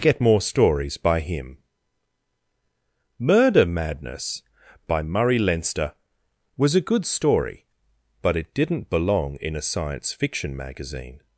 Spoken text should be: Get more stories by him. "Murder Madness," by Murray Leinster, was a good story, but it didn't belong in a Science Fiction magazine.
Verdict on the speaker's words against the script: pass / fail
pass